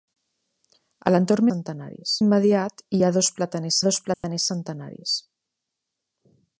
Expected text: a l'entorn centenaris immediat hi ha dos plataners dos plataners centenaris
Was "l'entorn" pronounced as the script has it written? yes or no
yes